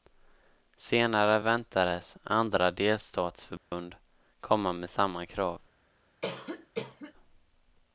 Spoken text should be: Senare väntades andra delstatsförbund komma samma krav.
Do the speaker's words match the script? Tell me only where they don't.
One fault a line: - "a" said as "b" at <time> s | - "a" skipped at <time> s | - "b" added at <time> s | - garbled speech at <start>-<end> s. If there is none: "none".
- "med" added at 4.7 s